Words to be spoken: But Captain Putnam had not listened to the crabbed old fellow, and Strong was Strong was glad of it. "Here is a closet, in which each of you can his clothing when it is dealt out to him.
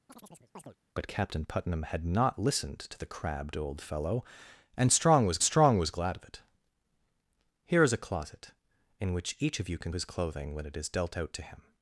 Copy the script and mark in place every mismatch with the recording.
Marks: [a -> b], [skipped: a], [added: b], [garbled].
But Captain Putnam had not listened to the crabbed old fellow, and Strong was Strong was glad of it. "Here is a closet, in which each of you can his clothing when it is dealt out to him.